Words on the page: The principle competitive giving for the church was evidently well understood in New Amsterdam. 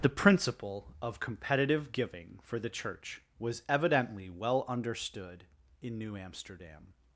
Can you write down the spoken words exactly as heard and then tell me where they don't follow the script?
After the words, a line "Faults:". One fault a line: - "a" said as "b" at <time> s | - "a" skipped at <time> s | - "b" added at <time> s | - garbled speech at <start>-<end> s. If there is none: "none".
The principle of competitive giving for the church was evidently well understood in New Amsterdam.
Faults:
- "of" added at 1.0 s